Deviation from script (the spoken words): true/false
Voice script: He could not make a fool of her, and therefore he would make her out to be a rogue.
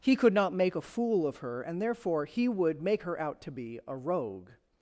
false